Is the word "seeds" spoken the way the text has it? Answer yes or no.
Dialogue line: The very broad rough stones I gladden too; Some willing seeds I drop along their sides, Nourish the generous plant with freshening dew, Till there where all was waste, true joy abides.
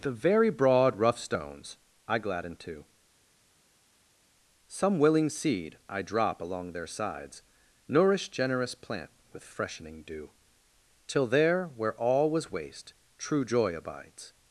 no